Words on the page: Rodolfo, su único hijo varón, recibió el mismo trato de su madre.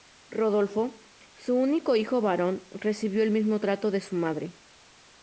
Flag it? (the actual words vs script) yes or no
no